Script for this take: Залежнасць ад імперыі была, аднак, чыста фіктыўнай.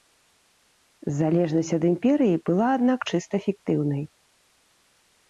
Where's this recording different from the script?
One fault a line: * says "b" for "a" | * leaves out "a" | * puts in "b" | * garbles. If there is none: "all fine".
all fine